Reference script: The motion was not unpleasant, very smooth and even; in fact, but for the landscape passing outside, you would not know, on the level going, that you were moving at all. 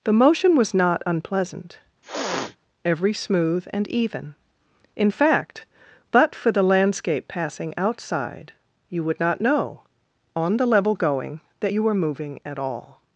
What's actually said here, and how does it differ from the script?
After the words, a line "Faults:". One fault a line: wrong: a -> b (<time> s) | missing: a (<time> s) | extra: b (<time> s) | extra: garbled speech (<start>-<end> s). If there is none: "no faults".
The motion was not unpleasant, every smooth and even; in fact, but for the landscape passing outside, you would not know, on the level going, that you were moving at all.
Faults:
wrong: very -> every (2.8 s)